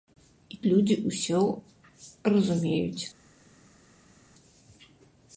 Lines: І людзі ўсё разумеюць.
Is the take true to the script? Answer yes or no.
yes